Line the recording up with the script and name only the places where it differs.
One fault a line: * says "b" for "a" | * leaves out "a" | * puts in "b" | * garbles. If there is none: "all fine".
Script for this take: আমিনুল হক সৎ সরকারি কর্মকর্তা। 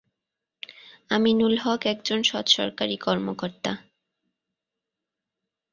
* puts in "একজন"